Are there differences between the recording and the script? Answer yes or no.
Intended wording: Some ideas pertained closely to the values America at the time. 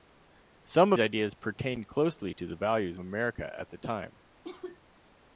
no